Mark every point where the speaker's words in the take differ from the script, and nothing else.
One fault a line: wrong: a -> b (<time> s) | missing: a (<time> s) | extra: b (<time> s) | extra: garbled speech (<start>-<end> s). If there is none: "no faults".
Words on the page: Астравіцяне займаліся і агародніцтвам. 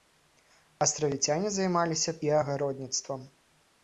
no faults